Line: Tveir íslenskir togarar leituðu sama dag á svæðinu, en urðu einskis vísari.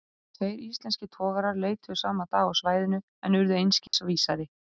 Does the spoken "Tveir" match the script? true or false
true